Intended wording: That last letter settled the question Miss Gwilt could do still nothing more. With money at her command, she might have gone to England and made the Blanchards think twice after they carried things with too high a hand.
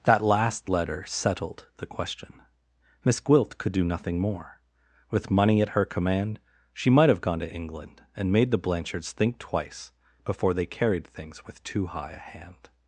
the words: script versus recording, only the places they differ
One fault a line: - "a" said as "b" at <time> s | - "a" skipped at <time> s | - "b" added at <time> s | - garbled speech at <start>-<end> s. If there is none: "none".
- "still" skipped at 3.8 s
- "after" said as "before" at 10.2 s